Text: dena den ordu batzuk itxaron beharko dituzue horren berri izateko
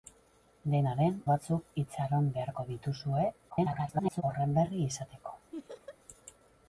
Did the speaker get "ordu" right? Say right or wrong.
wrong